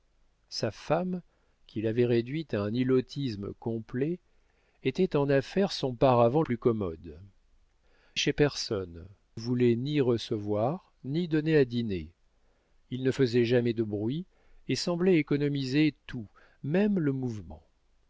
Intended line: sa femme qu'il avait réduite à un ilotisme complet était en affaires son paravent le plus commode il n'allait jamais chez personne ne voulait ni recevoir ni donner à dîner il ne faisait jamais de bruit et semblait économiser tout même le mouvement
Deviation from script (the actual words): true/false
true